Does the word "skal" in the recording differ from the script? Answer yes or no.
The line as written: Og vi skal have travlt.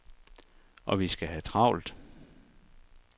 no